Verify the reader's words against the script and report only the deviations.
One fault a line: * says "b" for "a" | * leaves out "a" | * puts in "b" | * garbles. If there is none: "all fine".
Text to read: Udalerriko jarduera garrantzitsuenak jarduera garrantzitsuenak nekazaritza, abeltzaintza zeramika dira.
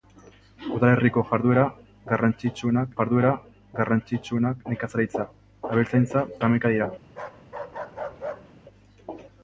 all fine